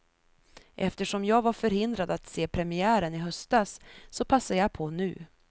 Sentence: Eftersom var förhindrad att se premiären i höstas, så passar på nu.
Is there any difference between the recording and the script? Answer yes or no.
yes